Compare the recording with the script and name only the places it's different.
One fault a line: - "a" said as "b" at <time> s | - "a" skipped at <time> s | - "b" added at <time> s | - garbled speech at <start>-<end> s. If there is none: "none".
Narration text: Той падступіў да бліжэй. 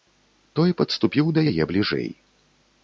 - "яе" added at 1.5 s